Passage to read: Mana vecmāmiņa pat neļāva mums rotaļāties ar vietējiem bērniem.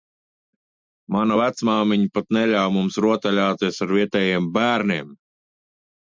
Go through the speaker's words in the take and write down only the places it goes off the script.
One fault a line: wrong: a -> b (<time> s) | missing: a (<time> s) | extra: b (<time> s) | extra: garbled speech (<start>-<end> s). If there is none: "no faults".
no faults